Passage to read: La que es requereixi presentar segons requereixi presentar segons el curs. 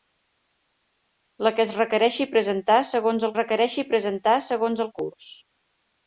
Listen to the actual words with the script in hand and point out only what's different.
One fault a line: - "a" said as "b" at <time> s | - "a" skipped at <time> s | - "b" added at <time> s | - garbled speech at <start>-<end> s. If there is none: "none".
none